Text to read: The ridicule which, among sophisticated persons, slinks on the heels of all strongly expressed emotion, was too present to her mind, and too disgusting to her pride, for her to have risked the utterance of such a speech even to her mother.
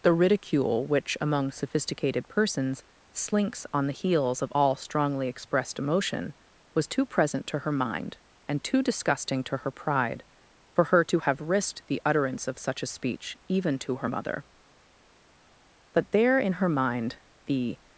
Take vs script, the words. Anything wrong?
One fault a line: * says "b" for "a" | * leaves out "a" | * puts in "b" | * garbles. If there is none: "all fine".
* puts in "But there in her mind the"